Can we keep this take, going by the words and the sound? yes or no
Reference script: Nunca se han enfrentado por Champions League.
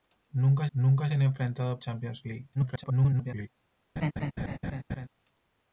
no